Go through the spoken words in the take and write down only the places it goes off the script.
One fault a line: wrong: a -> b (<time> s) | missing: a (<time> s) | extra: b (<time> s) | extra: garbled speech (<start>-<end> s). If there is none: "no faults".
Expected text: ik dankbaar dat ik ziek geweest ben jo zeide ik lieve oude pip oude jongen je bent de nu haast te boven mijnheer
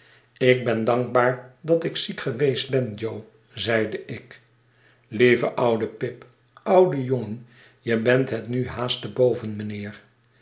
extra: ben (0.6 s)
wrong: de -> het (8.3 s)